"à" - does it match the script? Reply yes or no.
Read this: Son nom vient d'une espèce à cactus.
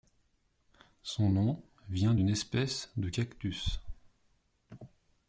no